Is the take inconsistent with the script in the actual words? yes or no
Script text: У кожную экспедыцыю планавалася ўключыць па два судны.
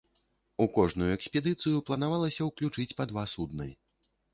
no